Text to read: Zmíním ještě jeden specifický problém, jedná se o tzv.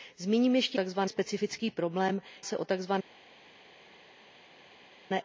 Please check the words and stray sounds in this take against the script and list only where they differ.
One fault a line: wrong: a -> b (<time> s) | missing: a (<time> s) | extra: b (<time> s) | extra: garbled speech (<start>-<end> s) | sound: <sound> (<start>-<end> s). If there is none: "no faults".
wrong: jeden -> tzv (0.7 s)
missing: jedná (2.2 s)